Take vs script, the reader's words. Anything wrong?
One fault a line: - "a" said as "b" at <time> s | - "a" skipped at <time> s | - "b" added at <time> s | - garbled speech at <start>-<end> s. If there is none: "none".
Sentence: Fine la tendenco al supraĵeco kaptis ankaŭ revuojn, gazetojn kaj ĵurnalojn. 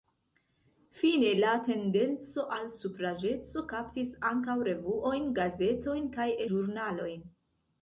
none